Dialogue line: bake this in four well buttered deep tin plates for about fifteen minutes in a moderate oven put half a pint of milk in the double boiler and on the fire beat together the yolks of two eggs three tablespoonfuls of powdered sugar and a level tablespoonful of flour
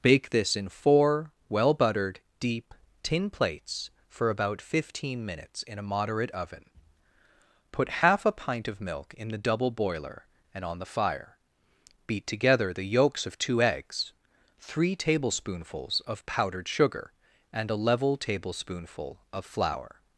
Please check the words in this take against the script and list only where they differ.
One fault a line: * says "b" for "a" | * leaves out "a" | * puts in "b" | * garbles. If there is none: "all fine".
all fine